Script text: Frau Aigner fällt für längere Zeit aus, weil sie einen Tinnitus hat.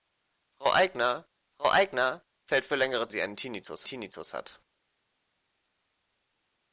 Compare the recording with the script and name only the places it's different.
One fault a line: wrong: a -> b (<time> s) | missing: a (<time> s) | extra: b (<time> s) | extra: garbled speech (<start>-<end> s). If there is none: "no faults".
extra: frau Aigner (1.5 s)
missing: Zeit aus weil (3.1 s)
extra: Tinnitus (3.8 s)